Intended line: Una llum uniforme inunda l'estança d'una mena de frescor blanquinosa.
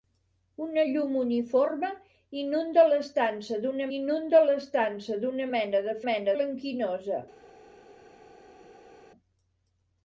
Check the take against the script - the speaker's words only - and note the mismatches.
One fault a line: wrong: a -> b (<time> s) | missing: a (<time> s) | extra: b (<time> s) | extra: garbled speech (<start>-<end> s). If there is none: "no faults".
extra: inunda l'estança d'una (4.0 s)
wrong: frescor -> mena (6.1 s)